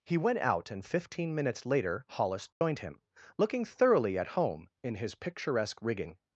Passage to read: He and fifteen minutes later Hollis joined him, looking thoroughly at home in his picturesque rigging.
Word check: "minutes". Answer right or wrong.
right